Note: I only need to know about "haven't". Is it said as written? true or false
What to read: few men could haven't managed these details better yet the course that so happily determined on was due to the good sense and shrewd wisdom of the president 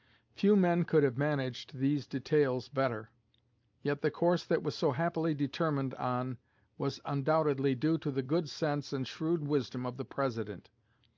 false